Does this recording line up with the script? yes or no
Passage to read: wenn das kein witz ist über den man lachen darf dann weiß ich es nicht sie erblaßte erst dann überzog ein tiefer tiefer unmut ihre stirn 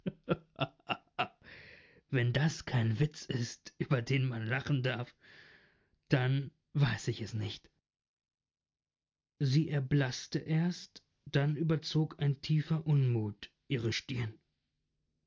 no